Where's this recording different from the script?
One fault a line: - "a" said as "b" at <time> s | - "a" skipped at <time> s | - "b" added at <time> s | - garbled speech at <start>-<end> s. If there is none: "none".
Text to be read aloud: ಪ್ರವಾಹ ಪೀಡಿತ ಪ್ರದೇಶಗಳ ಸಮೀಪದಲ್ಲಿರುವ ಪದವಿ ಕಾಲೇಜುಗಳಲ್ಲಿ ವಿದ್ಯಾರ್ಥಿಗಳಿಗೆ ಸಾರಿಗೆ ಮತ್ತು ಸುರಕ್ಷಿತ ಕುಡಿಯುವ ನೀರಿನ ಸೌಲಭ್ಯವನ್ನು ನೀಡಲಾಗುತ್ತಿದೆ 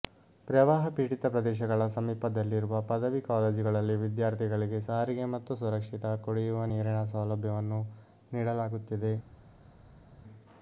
none